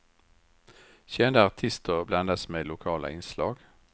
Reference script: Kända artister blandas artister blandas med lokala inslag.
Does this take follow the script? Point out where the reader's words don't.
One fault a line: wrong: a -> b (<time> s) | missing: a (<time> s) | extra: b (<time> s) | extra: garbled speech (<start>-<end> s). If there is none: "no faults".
missing: artister blandas (2.5 s)